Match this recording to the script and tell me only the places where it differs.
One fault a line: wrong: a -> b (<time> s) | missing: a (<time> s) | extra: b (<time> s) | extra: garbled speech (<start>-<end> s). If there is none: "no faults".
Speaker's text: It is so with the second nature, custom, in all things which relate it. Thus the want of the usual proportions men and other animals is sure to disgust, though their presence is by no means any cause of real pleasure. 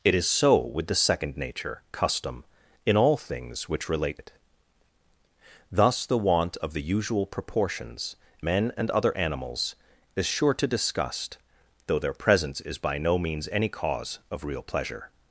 no faults